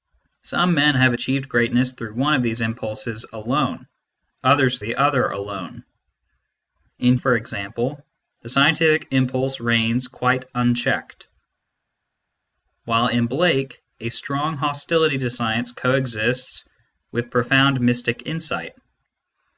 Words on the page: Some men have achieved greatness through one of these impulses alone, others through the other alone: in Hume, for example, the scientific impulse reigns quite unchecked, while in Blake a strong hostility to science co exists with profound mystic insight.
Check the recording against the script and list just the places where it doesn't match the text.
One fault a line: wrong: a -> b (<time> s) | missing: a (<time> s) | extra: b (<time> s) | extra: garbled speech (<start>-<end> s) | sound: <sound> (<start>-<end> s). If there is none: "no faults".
missing: through (4.8 s)
missing: Hume (7.2 s)